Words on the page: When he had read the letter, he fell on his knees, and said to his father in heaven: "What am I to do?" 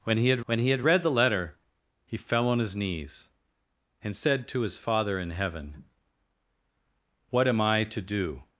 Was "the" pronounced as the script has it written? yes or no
yes